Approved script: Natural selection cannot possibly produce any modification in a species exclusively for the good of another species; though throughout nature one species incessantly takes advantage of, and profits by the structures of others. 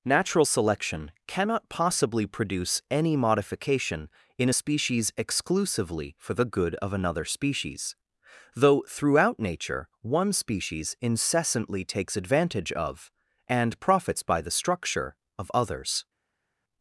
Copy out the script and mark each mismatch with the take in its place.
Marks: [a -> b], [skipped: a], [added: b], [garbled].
Natural selection cannot possibly produce any modification in a species exclusively for the good of another species; though throughout nature one species incessantly takes advantage of, and profits by the [structures -> structure] of others.